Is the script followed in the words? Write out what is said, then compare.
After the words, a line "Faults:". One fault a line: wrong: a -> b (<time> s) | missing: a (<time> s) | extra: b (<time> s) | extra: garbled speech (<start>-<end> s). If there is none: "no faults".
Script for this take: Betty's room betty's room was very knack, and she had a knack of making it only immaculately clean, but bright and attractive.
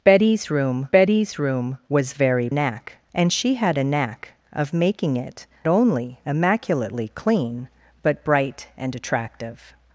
Betty's room betty's room was very knack, and she had a knack of making it only immaculately clean, but bright and attractive.
Faults:
no faults